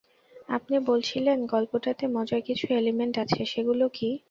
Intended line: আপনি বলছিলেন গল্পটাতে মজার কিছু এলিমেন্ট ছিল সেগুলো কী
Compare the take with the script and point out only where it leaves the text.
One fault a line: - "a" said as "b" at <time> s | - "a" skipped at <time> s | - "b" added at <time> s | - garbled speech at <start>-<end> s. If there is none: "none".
- "ছিল" said as "আছে" at 3.2 s